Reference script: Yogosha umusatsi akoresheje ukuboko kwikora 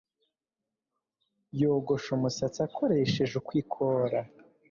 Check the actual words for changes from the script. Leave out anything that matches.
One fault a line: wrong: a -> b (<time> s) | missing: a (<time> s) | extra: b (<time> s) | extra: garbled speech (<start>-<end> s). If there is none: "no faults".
missing: ukuboko (3.3 s)